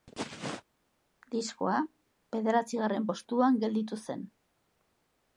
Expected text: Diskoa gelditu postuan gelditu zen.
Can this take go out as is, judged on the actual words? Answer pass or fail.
fail